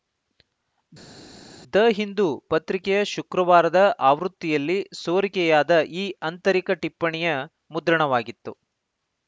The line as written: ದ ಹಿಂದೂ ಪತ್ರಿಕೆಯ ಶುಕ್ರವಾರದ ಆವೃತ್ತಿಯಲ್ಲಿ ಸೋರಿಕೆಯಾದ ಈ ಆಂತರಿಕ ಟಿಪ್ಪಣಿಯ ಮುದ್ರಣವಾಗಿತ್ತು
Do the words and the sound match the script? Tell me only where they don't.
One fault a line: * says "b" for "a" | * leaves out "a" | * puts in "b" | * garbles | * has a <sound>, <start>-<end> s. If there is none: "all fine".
all fine